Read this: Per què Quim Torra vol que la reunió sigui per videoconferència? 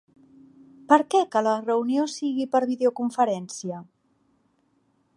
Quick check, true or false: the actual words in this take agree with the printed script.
false